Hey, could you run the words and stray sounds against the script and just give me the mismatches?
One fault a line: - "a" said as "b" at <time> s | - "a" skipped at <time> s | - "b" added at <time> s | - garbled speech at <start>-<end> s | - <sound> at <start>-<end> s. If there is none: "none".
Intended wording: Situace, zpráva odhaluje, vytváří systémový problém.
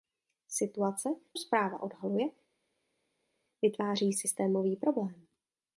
none